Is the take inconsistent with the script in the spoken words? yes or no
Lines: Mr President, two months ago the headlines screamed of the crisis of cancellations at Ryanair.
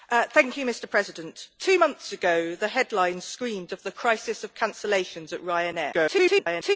yes